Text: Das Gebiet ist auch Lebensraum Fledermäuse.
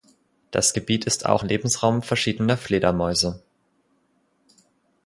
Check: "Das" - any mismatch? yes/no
no